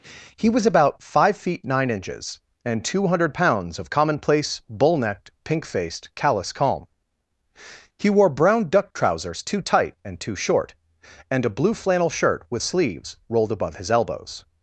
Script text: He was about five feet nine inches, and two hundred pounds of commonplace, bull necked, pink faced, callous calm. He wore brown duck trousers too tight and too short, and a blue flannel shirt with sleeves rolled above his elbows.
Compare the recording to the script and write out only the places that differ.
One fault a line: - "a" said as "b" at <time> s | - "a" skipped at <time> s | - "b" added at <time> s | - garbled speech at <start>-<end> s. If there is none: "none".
none